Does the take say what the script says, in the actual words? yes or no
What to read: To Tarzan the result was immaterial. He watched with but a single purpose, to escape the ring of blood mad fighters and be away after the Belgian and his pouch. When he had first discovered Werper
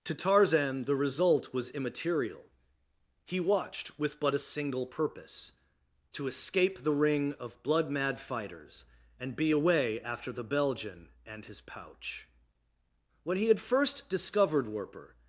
yes